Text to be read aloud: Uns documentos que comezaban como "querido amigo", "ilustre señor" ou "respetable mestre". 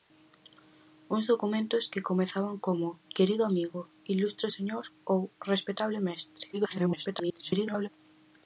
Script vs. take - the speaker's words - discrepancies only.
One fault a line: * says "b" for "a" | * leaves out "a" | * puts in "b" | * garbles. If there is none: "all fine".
* garbles